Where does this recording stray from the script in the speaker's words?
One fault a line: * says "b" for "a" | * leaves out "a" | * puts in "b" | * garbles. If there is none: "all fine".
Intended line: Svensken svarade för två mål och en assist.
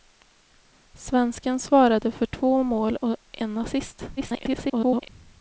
* garbles